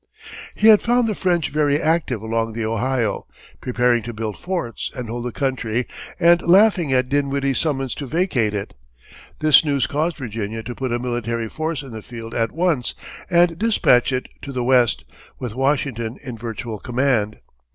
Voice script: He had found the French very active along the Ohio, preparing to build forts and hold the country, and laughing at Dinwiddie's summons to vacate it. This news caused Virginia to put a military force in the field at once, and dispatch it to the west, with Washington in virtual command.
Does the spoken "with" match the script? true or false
true